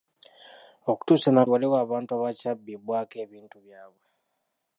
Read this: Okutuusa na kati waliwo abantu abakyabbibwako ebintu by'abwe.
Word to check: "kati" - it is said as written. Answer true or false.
false